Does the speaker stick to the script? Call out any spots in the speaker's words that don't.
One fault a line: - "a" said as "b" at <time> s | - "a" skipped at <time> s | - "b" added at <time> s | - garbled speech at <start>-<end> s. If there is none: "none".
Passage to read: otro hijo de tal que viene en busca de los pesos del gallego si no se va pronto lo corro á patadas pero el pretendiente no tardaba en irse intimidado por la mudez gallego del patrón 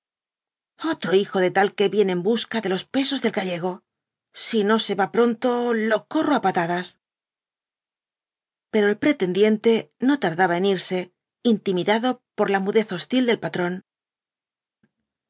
- "gallego" said as "hostil" at 12.9 s